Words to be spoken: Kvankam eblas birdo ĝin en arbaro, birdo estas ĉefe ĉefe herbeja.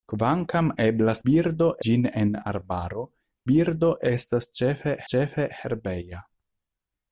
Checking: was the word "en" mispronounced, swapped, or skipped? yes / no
no